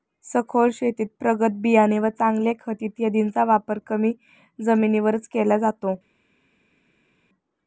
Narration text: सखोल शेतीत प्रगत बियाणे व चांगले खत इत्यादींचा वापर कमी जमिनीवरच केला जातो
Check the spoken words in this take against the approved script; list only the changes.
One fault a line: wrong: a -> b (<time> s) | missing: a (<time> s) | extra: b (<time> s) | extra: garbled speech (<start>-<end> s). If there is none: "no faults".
no faults